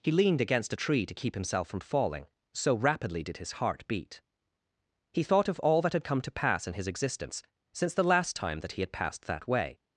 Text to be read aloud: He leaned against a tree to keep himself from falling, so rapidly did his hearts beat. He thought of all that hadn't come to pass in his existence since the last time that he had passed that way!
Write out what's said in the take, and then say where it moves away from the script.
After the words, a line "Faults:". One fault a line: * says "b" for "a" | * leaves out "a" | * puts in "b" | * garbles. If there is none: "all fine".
He leaned against a tree to keep himself from falling, so rapidly did his heart beat. He thought of all that had come to pass in his existence since the last time that he had passed that way!
Faults:
* says "heart" for "hearts"
* says "had" for "hadn't"